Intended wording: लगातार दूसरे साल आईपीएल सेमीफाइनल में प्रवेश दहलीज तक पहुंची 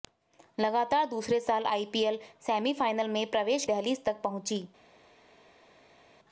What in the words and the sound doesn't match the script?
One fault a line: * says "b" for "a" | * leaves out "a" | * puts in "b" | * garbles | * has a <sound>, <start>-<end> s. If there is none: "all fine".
all fine